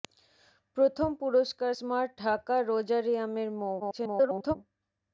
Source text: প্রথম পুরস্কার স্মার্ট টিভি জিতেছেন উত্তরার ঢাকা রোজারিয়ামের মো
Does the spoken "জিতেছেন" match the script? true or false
false